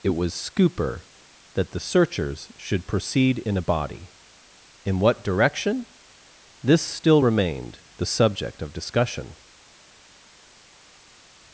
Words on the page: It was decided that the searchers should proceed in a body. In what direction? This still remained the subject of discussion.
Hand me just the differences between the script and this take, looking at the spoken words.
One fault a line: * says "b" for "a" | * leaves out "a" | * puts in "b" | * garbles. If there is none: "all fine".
* says "scooper" for "decided"